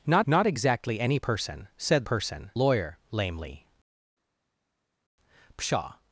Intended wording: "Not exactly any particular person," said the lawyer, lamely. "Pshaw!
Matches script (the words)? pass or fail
fail